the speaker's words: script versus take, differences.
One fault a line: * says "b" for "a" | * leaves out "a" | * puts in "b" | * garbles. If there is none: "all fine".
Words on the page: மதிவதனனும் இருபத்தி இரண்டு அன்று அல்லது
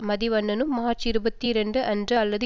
* puts in "மார்ச்"